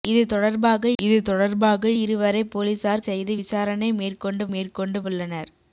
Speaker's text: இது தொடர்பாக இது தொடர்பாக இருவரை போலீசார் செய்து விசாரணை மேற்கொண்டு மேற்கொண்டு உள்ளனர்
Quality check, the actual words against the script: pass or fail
pass